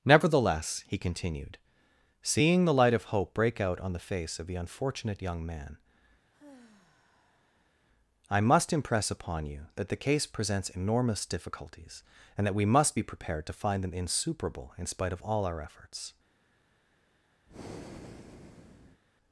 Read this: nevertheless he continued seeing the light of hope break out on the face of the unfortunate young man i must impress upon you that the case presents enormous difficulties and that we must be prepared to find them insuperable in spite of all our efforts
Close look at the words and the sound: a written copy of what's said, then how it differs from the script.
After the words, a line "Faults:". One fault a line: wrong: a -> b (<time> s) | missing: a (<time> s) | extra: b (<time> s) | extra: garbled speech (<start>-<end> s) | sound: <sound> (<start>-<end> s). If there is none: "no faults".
nevertheless he continued seeing the light of hope break out on the face of the unfortunate young man i must impress upon you that the case presents enormous difficulties and that we must be prepared to find them insuperable in spite of all our efforts
Faults:
sound: sigh (6.3-7.7 s)
sound: breath (17.5-19.0 s)